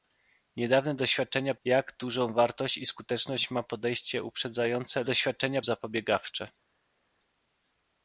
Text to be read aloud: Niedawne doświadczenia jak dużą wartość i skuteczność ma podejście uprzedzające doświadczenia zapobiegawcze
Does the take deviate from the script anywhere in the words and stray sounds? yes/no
no